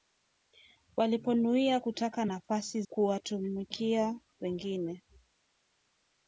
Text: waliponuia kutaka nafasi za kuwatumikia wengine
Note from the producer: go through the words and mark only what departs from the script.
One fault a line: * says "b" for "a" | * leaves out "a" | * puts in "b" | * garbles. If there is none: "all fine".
* leaves out "za"